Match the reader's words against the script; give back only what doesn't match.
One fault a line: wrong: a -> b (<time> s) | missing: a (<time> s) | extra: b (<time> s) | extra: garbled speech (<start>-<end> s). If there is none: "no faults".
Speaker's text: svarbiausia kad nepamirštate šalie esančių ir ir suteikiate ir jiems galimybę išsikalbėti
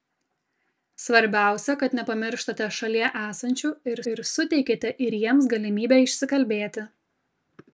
no faults